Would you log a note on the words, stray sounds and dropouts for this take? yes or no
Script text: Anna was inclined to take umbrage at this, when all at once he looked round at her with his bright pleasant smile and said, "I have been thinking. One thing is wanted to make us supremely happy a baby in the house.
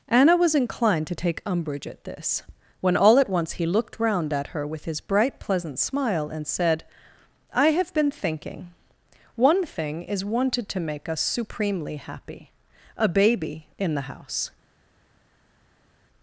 no